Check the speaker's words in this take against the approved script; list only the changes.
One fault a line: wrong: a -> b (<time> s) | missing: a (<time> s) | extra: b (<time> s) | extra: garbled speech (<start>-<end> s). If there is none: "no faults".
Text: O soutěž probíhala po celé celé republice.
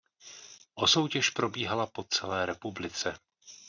missing: celé (2.5 s)